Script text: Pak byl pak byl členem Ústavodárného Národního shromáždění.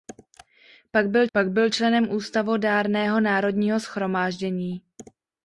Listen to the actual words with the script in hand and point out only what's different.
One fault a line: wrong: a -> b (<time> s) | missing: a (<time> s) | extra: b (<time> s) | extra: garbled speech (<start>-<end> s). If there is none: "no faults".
no faults